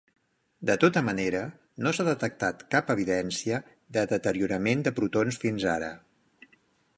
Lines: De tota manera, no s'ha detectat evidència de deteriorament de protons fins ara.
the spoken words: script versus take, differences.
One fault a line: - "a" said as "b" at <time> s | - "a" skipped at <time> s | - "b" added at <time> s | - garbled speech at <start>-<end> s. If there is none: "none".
- "cap" added at 2.8 s